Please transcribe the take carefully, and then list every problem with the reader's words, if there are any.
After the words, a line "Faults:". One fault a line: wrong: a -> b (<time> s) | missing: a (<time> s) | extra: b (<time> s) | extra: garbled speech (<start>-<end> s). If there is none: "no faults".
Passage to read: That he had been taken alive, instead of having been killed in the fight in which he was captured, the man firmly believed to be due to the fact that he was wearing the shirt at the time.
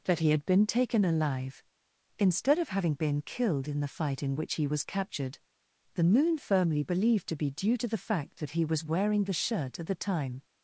That he had been taken alive, instead of having been killed in the fight in which he was captured, the moon firmly believed to be due to the fact that he was wearing the shirt at the time.
Faults:
wrong: man -> moon (6.1 s)